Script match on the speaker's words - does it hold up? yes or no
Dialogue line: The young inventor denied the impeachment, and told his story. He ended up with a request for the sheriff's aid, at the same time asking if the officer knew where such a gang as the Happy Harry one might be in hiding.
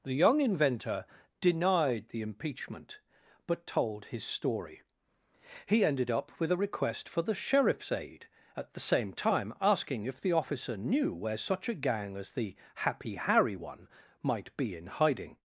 no